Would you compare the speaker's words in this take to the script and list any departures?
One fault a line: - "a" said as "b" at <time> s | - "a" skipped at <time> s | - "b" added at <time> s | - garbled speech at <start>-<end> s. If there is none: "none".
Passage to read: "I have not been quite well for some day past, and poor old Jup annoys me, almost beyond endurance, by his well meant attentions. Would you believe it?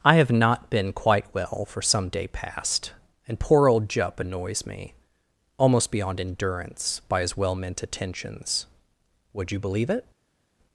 none